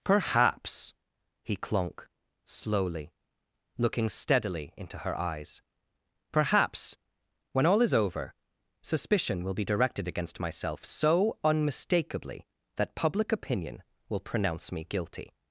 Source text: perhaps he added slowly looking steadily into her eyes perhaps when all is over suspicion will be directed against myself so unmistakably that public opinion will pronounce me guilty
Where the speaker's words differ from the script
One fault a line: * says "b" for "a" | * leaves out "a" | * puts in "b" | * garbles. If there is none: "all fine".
* says "clonk" for "added"